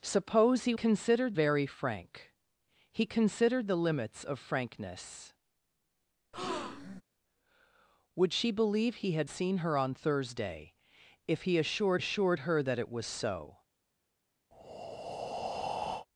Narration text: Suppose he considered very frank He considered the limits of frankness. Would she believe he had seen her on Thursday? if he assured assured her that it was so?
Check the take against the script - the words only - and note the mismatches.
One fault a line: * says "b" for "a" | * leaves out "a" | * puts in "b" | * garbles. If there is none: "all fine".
all fine